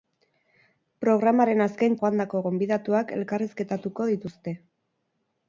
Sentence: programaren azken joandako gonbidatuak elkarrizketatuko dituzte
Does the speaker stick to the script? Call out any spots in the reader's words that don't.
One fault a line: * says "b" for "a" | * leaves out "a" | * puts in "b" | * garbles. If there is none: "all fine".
all fine